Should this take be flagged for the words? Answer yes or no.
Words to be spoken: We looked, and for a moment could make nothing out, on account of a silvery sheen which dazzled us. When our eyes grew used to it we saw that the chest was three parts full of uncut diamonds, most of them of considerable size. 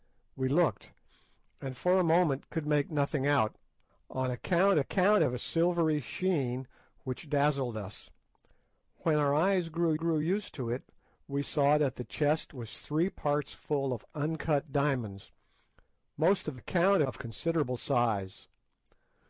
yes